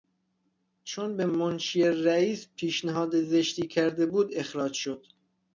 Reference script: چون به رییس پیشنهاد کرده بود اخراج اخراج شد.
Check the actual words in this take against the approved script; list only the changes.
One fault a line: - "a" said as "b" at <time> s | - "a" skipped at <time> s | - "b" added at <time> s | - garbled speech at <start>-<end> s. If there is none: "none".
- "منشی" added at 1.2 s
- "زشتی" added at 3.2 s
- "اخراج" skipped at 4.7 s